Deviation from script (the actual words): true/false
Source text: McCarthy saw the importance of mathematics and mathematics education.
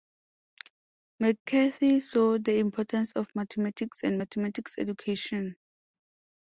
false